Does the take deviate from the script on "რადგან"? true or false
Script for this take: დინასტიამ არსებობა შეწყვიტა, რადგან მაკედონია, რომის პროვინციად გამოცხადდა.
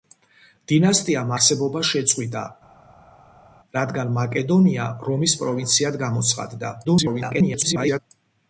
false